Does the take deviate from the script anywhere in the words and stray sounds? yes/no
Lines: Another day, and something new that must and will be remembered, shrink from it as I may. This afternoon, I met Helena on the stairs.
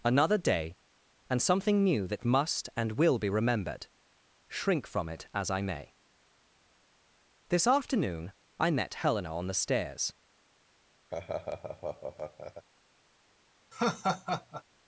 yes